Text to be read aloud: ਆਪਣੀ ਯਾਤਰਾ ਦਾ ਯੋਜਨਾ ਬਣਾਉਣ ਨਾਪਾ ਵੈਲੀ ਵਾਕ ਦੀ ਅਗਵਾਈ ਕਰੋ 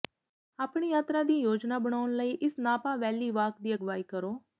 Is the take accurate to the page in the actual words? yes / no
no